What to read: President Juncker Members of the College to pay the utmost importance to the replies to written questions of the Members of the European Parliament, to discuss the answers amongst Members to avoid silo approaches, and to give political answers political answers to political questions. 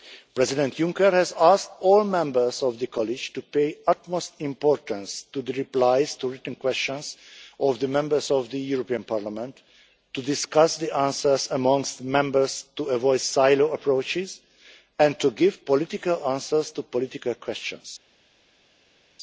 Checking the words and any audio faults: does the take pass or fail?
fail